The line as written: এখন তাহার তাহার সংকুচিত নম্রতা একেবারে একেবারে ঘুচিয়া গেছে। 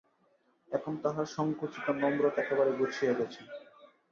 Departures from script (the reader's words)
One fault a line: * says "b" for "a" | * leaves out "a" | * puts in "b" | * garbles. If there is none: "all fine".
* leaves out "তাহার"
* leaves out "একেবারে"